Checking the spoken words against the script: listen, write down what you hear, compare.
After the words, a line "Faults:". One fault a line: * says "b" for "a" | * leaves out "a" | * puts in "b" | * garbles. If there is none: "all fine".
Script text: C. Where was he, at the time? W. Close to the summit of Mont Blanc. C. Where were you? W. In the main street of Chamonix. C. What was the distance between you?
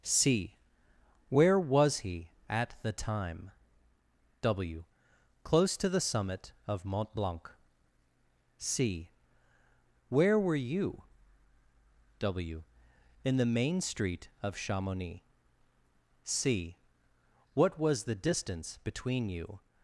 C. Where was he, at the time? W. Close to the summit of Mont Blanc. C. Where were you? W. In the main street of Chamonix. C. What was the distance between you?
Faults:
all fine